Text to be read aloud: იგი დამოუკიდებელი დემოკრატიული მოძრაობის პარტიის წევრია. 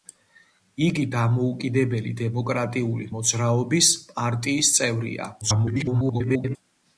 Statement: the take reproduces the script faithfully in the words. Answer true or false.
false